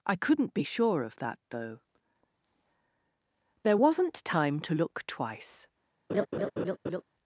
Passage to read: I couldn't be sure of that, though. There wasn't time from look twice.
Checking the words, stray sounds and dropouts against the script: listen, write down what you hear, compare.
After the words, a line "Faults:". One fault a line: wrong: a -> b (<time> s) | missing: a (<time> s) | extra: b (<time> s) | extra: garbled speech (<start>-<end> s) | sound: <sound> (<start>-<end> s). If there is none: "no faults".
I couldn't be sure of that, though. There wasn't time to look twice.
Faults:
wrong: from -> to (4.6 s)
sound: laugh (6.1-7.0 s)